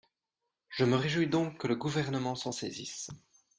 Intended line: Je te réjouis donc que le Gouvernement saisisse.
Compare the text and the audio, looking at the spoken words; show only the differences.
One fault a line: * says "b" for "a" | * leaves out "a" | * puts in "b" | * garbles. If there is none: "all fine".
* says "me" for "te"
* puts in "s'en"